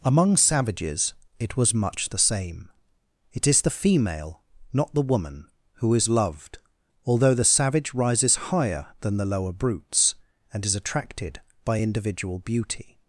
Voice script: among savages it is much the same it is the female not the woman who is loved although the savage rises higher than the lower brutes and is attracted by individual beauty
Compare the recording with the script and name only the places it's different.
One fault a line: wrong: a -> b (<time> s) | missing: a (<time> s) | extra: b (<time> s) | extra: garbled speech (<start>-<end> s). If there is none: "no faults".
wrong: is -> was (1.6 s)